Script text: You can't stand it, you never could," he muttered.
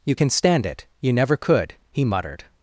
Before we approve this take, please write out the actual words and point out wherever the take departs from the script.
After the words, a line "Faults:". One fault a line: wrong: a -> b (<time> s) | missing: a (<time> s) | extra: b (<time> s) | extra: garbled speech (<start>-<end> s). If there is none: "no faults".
You can stand it, you never could," he muttered.
Faults:
wrong: can't -> can (0.1 s)